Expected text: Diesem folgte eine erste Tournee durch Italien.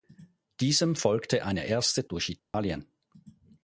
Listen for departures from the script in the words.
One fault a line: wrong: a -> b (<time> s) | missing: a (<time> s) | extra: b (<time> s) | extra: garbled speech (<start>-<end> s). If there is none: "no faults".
missing: Tournee (2.1 s)